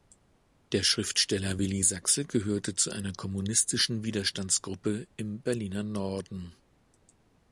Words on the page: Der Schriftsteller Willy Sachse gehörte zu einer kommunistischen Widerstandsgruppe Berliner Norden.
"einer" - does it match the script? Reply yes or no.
yes